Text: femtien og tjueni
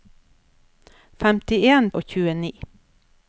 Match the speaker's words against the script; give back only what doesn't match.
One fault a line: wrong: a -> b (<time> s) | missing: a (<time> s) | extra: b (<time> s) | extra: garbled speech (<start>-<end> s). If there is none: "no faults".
no faults